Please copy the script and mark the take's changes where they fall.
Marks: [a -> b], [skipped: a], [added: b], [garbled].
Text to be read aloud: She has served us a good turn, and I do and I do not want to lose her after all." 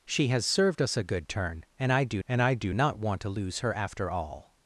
She has served us a good turn, and I do and I do not want to lose her after all."